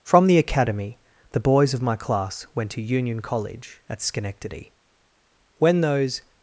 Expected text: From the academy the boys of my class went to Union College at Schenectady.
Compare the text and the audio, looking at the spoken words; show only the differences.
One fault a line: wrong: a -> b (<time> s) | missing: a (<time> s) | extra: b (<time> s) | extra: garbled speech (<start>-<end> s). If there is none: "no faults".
extra: When those (5.6 s)